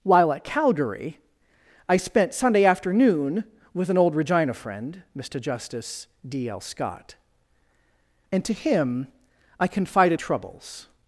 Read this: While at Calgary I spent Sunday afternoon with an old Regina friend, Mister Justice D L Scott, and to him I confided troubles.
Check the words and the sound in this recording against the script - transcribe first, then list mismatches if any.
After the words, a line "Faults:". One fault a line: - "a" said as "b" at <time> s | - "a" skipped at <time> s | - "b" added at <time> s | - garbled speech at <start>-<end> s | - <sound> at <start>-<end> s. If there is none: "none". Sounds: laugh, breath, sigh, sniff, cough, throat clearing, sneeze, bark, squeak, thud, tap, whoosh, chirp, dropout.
While at Calgary I spent Sunday afternoon with an old Regina friend, Mister Justice D L Scott, and to him I confided troubles.
Faults:
none